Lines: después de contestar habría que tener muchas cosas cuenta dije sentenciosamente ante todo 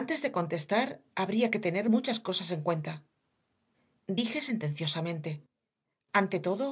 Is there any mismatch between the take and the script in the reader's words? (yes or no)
yes